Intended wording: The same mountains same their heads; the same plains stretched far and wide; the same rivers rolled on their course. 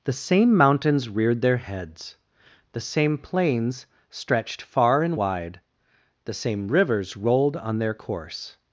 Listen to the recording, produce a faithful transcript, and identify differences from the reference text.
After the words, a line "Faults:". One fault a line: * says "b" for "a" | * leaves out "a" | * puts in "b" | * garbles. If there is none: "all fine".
The same mountains reared their heads; the same plains stretched far and wide; the same rivers rolled on their course.
Faults:
* says "reared" for "same"